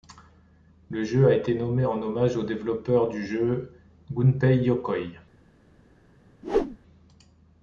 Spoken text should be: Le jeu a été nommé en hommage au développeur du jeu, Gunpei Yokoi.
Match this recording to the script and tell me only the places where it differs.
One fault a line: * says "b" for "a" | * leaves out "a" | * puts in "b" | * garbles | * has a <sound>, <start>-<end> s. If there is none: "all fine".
* has a whoosh, 6.4-6.8 s